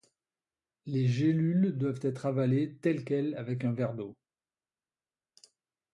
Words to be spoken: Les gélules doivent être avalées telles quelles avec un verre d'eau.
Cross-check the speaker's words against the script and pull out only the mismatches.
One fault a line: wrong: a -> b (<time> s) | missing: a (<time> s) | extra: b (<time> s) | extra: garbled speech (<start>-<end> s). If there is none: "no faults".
no faults